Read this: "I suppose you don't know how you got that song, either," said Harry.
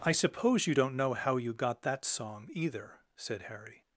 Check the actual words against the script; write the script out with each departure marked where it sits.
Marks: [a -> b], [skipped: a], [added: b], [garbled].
"I suppose you don't know how you got that song, either," said Harry.